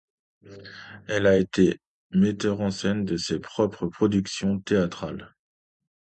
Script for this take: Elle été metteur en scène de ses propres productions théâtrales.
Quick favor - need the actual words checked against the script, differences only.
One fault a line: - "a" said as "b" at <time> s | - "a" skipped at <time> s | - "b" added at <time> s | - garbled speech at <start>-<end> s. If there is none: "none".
- "a" added at 1.3 s